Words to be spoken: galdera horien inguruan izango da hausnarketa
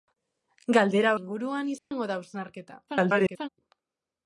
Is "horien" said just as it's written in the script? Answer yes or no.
no